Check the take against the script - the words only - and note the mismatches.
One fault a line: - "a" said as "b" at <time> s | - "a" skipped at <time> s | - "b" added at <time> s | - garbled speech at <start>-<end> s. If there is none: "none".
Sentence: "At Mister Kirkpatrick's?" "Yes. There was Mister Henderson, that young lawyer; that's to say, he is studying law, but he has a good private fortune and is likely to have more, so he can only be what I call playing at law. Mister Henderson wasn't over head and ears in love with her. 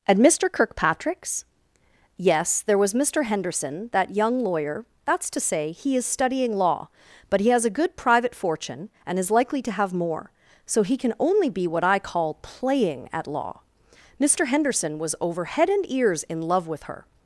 - "wasn't" said as "was" at 15.0 s